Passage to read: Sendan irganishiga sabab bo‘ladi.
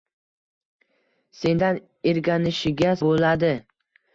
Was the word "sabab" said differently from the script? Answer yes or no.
yes